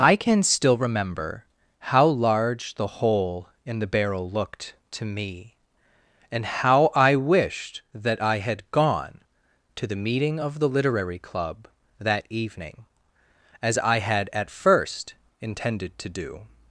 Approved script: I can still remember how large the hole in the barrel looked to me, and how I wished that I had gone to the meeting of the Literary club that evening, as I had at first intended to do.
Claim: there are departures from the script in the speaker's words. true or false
false